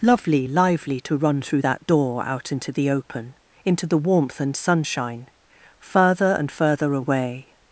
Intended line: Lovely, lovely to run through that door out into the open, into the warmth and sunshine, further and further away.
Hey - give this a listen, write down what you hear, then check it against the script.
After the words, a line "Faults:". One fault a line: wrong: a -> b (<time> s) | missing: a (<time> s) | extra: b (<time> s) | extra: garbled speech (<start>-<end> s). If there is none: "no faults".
Lovely, lively to run through that door out into the open, into the warmth and sunshine, further and further away.
Faults:
wrong: lovely -> lively (0.5 s)